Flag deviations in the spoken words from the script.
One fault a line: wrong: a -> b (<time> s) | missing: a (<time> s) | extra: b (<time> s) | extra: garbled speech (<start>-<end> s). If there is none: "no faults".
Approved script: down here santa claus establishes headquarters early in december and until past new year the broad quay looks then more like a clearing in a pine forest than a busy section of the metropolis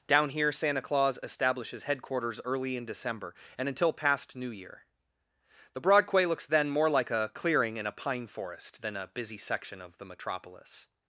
no faults